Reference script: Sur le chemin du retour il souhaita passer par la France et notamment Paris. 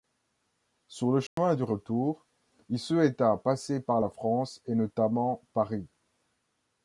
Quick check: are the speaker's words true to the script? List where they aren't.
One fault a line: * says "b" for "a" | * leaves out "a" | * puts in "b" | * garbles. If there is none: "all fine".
all fine